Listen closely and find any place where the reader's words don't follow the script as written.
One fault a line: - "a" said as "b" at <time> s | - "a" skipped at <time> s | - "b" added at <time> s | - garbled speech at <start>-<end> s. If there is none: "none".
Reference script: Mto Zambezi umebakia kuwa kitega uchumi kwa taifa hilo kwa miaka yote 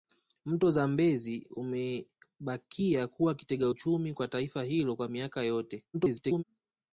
- garbled speech at 5.9-6.4 s